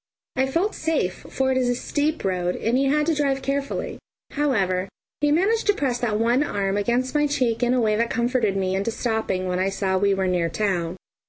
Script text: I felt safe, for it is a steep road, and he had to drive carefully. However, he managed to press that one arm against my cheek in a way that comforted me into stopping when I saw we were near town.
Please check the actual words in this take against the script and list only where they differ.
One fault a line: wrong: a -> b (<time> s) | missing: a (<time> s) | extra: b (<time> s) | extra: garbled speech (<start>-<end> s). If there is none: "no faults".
no faults